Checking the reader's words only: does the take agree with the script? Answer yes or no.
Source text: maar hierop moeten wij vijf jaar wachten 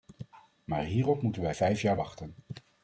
yes